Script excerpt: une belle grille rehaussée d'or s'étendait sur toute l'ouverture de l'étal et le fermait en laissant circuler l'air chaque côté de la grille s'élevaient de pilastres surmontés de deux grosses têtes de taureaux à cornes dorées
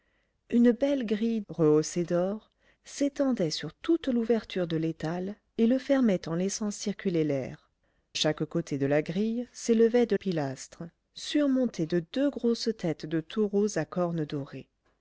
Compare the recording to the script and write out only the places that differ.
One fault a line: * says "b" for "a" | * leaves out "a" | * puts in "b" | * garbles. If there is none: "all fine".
all fine